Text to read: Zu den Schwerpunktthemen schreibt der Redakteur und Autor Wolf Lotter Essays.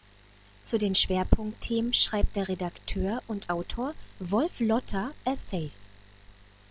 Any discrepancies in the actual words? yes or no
no